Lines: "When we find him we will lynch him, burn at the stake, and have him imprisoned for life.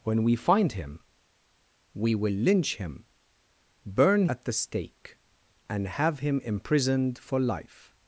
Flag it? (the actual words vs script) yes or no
no